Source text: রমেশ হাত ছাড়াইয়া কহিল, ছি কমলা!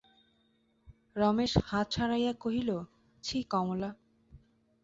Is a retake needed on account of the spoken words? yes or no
no